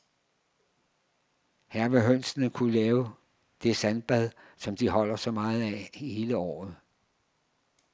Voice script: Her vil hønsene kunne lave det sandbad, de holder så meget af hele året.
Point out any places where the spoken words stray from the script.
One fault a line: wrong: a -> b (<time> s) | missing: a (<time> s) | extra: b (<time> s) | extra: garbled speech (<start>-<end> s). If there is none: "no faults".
extra: som (4.6 s)